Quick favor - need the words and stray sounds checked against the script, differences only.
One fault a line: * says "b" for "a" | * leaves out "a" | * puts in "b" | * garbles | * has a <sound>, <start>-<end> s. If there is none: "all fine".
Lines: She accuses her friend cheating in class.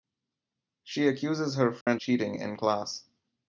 * has a dropout, 1.8-1.9 s